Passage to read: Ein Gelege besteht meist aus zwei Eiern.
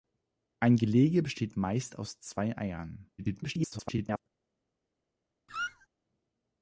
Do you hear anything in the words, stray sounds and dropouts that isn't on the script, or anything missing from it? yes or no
yes